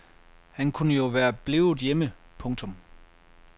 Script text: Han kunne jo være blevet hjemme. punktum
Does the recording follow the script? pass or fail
pass